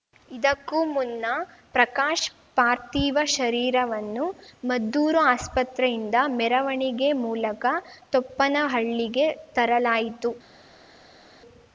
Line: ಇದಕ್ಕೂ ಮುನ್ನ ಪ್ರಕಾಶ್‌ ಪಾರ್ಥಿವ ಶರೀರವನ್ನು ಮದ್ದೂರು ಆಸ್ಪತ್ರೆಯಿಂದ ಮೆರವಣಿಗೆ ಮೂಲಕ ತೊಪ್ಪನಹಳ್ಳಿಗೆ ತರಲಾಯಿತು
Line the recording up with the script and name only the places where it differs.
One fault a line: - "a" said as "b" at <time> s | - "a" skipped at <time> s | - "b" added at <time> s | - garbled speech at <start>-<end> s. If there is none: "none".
none